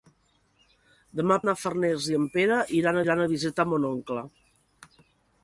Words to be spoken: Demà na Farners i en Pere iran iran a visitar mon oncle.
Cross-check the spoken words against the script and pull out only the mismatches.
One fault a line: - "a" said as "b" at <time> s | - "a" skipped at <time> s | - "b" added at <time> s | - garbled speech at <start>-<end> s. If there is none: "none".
none